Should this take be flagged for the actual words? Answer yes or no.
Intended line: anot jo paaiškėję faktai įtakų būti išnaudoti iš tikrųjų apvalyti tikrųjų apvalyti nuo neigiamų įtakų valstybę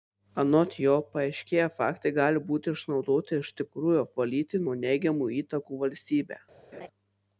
yes